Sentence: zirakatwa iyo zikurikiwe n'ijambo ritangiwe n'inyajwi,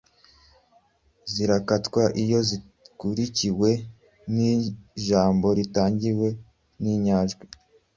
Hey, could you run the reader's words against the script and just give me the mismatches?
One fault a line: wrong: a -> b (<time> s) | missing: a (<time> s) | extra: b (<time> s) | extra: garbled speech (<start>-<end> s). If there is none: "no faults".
no faults